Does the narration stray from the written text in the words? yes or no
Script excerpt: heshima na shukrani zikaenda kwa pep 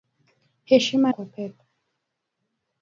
yes